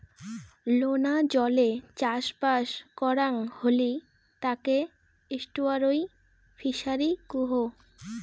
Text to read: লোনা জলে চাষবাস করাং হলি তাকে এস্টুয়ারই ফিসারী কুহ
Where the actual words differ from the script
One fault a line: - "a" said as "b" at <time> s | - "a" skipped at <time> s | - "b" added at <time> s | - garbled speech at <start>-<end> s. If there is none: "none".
none